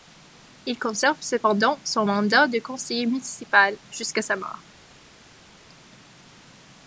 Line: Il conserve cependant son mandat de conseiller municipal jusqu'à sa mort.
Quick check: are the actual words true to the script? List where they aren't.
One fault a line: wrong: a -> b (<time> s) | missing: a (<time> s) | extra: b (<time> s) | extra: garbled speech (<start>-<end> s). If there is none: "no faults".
no faults